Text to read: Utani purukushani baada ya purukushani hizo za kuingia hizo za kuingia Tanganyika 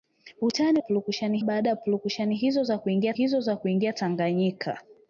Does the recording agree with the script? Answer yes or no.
yes